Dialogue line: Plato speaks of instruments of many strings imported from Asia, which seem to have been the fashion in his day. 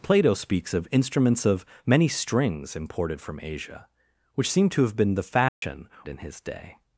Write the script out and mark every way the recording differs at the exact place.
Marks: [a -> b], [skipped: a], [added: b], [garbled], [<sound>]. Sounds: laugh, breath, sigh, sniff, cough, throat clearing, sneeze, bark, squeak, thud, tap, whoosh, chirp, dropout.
Plato speaks of instruments of many strings imported from Asia, which seem to have been the fashion [dropout] in his day.